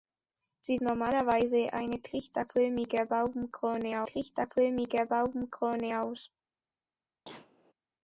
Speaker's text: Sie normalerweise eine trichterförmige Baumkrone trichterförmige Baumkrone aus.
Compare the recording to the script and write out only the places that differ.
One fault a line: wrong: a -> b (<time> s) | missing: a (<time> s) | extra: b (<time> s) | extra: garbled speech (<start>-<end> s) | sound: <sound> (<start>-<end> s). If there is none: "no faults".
sound: cough (7.3-7.7 s)